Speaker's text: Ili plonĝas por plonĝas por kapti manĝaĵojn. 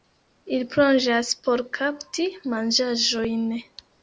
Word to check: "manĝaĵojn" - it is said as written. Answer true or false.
true